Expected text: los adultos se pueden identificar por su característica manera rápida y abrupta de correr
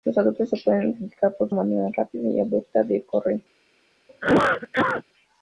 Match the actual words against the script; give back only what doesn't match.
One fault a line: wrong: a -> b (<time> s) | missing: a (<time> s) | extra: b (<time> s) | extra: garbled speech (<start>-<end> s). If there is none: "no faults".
missing: su característica (1.5 s)